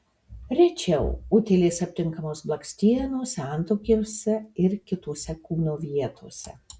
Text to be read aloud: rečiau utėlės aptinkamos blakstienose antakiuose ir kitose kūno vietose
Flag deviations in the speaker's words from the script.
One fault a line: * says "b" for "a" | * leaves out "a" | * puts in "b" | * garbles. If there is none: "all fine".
all fine